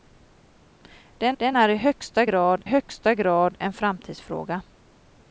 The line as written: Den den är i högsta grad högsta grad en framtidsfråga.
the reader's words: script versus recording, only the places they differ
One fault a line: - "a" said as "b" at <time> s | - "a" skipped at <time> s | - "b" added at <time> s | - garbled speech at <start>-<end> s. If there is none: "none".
none